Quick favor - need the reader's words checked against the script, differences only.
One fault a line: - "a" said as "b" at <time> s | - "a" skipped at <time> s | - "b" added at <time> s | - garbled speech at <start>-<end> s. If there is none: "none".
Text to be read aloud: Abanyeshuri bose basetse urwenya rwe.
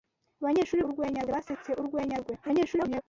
- "bose" said as "urwenya" at 0.9 s
- garbled speech at 2.4-3.0 s